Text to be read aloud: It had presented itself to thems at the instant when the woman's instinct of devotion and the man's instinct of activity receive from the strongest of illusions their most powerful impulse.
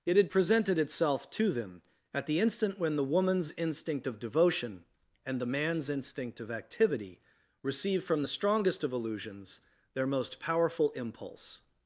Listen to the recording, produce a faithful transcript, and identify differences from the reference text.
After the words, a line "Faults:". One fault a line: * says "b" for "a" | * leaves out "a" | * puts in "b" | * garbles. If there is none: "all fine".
It had presented itself to them at the instant when the woman's instinct of devotion and the man's instinct of activity receive from the strongest of illusions their most powerful impulse.
Faults:
* says "them" for "thems"